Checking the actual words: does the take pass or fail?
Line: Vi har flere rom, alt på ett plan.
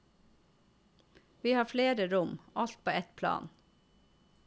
pass